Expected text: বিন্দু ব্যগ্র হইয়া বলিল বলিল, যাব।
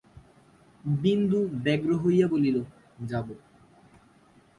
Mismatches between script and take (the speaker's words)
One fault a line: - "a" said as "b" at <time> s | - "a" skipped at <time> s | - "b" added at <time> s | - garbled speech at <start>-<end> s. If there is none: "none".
- "বলিল" skipped at 2.6 s